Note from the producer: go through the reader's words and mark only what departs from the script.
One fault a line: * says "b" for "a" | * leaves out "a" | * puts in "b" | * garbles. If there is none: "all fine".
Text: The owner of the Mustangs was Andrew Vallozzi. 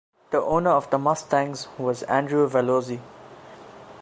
all fine